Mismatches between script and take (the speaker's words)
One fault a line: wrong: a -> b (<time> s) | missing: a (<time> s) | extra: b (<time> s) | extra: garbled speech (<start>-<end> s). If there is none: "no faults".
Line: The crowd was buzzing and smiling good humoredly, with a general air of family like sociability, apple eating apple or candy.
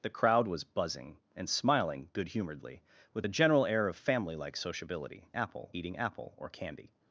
no faults